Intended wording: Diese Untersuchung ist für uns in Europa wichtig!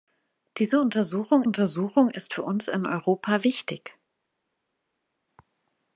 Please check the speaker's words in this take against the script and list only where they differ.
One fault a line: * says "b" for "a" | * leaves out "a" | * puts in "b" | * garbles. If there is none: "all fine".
* puts in "Untersuchung"